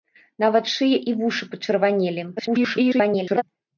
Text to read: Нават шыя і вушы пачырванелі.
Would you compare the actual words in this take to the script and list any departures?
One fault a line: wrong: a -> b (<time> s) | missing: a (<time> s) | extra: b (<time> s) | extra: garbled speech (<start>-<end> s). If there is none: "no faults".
extra: garbled speech (2.4-3.4 s)